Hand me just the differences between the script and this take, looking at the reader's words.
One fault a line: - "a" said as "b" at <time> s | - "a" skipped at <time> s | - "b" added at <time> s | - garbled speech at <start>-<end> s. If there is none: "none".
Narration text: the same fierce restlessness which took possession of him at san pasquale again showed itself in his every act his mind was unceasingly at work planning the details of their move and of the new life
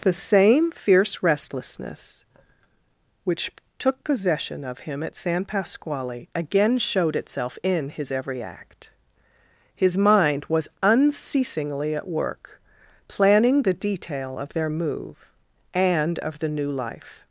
- "details" said as "detail" at 13.8 s